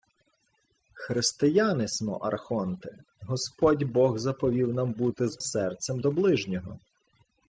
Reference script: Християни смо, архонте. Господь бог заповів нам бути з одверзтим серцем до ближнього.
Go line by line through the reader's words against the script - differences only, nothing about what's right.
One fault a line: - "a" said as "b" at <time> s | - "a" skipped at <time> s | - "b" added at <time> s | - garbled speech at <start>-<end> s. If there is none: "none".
- "одверзтим" skipped at 5.4 s